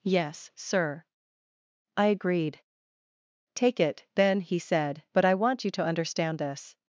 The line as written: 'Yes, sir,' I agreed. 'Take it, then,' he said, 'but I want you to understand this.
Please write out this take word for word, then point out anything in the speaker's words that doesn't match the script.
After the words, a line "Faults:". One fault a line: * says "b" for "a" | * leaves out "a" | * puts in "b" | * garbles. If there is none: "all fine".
'Yes, sir,' I agreed. 'Take it, then,' he said, 'but I want you to understand this.
Faults:
all fine